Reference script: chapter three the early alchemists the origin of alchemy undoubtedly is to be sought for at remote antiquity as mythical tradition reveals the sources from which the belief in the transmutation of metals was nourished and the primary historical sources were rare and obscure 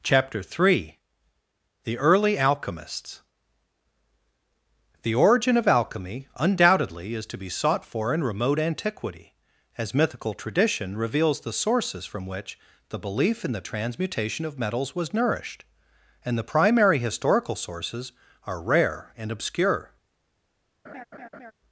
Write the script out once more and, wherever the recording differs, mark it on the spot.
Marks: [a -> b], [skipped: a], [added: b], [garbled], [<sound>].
chapter three the early alchemists the origin of alchemy undoubtedly is to be sought for [at -> in] remote antiquity as mythical tradition reveals the sources from which the belief in the transmutation of metals was nourished and the primary historical sources [were -> are] rare and obscure [laugh]